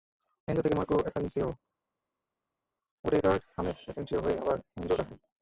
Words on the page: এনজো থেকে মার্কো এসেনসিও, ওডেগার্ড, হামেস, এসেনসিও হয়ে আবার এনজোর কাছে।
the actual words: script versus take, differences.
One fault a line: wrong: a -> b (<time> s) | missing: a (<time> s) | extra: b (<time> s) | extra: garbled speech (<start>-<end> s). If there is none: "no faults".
no faults